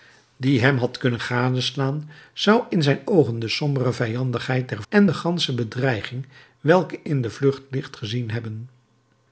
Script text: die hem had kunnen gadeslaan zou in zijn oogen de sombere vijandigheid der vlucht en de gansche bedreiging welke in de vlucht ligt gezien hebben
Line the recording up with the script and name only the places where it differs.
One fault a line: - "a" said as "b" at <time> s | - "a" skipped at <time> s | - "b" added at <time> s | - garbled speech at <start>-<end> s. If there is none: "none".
- "vlucht" skipped at 4.8 s